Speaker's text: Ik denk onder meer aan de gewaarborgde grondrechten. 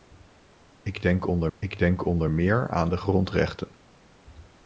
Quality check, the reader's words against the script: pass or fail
fail